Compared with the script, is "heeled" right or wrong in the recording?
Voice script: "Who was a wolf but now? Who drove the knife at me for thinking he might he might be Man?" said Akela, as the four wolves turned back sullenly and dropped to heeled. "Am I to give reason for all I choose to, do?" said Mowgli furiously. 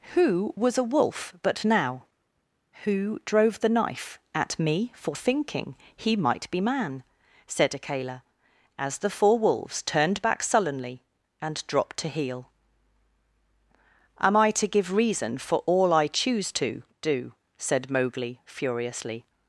wrong